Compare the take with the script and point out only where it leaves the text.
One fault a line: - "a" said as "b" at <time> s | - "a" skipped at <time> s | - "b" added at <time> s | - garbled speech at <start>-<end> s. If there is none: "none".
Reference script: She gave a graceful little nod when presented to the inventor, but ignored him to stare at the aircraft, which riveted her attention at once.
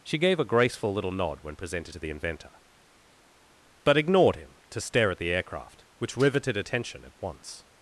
- "her" skipped at 6.6 s